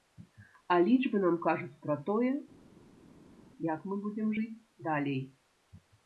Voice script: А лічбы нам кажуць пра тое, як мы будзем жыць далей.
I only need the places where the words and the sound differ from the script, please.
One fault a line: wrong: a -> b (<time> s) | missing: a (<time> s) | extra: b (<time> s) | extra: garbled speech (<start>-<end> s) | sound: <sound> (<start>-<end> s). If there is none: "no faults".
no faults